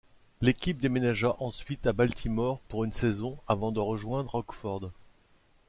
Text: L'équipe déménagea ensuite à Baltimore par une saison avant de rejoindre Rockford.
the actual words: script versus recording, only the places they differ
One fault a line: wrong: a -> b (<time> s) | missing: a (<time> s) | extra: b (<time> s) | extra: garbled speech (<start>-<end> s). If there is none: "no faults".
wrong: par -> pour (2.7 s)